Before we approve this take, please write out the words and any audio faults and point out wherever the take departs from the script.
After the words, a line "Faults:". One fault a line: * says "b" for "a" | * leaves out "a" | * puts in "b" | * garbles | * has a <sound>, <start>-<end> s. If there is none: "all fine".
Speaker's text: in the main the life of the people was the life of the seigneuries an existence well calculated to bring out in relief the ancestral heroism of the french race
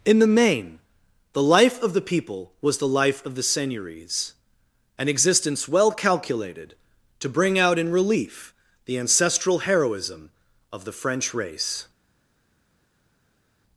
in the main the life of the people was the life of the seigneuries an existence well calculated to bring out in relief the ancestral heroism of the french race
Faults:
all fine